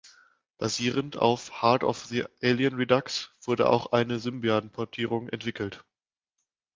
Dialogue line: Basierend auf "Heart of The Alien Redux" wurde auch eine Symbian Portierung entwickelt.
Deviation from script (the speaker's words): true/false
false